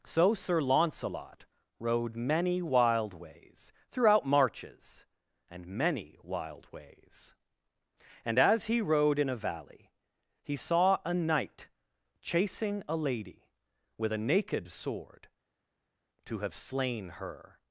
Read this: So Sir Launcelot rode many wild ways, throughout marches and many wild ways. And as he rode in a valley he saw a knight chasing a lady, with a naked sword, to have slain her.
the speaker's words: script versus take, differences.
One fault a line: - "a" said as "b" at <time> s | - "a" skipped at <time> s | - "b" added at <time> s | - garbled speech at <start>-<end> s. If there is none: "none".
none